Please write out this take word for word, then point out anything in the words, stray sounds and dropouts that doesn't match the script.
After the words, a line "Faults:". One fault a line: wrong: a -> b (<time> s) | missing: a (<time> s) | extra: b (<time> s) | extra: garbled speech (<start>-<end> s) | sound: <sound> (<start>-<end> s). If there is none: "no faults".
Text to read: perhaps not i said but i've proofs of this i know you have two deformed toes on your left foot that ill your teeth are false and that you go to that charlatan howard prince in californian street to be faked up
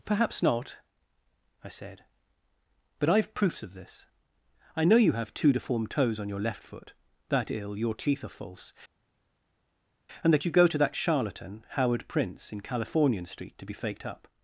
perhaps not i said but i've proofs of this i know you have two deformed toes on your left foot that ill your teeth are false and that you go to that charlatan howard prince in californian street to be faked up
Faults:
no faults